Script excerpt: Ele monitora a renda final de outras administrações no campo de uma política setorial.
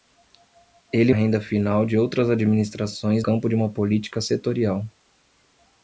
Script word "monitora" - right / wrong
wrong